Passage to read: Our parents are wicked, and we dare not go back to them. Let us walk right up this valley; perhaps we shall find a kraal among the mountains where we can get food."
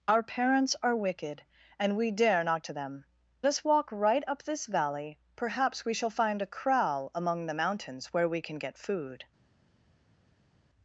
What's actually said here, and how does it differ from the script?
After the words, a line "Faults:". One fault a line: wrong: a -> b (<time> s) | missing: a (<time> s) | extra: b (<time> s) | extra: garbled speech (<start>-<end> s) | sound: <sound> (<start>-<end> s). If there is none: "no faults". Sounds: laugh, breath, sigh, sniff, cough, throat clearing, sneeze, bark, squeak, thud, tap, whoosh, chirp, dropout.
Our parents are wicked, and we dare not to them. Us walk right up this valley; perhaps we shall find a kraal among the mountains where we can get food."
Faults:
missing: go back (2.6 s)
missing: Let (3.0 s)